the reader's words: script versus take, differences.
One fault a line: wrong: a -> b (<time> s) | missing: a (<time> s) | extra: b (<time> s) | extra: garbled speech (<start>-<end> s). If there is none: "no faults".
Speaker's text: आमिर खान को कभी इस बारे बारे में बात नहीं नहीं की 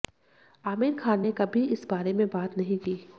wrong: को -> ने (1.2 s)
missing: बारे (2.1 s)
missing: नहीं (2.8 s)